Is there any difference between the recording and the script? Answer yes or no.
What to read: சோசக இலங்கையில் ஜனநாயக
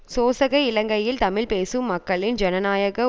yes